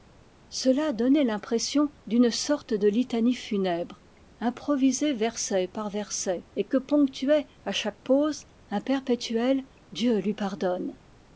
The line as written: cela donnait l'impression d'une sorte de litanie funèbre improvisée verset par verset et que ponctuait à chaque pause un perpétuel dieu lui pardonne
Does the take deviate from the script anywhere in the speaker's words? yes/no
no